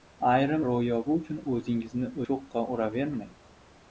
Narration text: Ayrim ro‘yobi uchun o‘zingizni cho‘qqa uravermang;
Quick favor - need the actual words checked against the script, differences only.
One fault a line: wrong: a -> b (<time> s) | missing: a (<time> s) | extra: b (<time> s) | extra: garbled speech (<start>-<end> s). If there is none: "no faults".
no faults